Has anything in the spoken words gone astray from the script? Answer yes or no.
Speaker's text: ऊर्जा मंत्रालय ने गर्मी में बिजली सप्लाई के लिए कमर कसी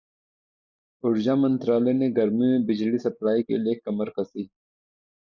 no